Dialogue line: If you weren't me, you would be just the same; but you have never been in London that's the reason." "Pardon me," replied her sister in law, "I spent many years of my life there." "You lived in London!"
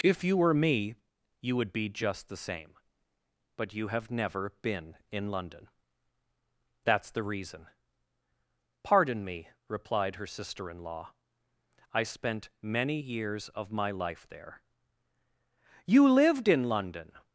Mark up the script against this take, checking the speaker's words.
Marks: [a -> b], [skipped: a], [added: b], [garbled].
If you [weren't -> were] me, you would be just the same; but you have never been in London that's the reason." "Pardon me," replied her sister in law, "I spent many years of my life there." "You lived in London!"